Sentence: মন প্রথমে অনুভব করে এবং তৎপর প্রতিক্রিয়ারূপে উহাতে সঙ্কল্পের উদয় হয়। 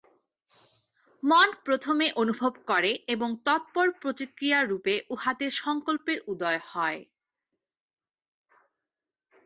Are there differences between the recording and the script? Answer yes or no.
no